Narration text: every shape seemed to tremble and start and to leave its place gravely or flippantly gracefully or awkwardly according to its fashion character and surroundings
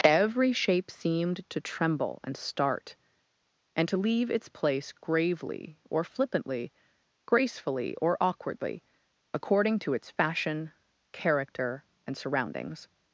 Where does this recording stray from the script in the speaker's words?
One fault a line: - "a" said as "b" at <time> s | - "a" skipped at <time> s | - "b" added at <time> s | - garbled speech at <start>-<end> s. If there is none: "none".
none